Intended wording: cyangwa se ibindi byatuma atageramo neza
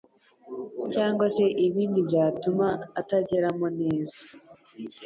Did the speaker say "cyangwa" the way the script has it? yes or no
yes